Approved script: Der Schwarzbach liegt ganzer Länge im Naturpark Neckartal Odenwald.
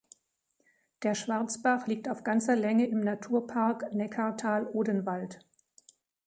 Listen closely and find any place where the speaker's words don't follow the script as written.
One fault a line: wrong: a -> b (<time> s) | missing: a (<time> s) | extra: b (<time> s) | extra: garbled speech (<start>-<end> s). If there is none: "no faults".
extra: auf (2.1 s)